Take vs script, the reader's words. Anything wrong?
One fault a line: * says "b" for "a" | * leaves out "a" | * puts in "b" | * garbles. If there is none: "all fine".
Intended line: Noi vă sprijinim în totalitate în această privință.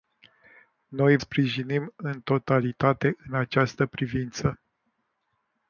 * leaves out "vă"